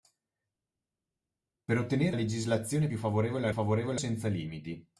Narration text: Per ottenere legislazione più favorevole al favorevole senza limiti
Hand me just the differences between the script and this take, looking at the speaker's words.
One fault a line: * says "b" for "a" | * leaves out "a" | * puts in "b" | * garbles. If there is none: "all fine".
all fine